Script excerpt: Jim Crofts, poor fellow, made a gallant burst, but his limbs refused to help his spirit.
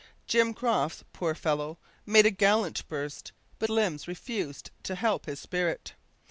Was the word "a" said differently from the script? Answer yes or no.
no